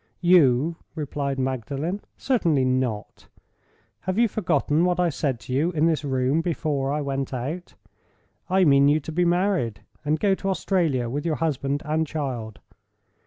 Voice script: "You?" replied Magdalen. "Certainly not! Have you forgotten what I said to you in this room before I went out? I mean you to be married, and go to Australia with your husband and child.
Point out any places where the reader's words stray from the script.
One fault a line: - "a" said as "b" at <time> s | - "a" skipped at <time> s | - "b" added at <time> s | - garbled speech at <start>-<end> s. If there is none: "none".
none